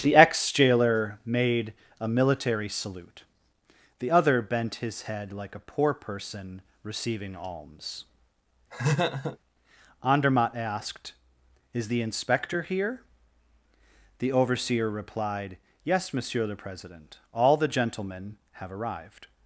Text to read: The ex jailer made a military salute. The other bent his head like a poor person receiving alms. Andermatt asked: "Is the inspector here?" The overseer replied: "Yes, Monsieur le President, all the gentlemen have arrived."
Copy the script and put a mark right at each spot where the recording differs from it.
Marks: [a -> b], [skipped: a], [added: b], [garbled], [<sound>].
The ex jailer made a military salute. The other bent his head like a poor person receiving alms. [laugh] Andermatt asked: "Is the inspector here?" The overseer replied: "Yes, Monsieur le President, all the gentlemen have arrived."